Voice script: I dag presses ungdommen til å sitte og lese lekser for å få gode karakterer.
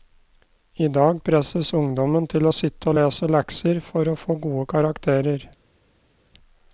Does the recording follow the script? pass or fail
pass